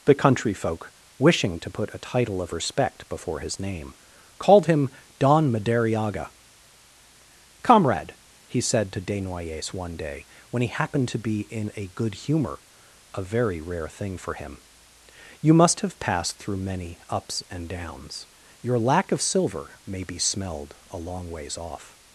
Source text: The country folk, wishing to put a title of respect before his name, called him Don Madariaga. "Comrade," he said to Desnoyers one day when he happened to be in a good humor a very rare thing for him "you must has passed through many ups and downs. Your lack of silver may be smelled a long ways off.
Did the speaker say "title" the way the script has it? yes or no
yes